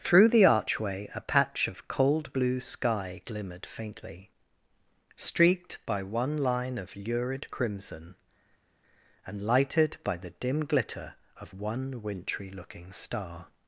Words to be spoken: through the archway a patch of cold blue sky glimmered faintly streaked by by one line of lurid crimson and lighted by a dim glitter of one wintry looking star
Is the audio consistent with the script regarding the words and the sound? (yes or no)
no